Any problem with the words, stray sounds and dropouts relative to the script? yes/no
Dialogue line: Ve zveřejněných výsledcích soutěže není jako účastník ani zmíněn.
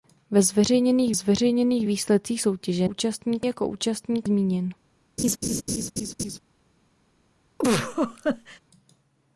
yes